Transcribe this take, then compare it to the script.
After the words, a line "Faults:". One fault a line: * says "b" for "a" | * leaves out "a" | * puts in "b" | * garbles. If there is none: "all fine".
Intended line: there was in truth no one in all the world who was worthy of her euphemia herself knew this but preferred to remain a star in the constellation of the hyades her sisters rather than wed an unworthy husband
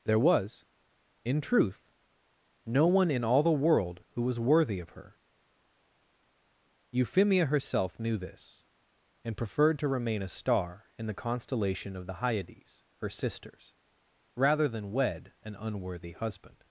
there was in truth no one in all the world who was worthy of her euphemia herself knew this and preferred to remain a star in the constellation of the hyades her sisters rather than wed an unworthy husband
Faults:
* says "and" for "but"